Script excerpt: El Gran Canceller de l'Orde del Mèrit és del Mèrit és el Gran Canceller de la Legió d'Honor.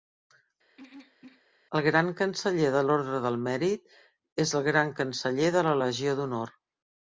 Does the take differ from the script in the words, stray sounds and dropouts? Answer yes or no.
yes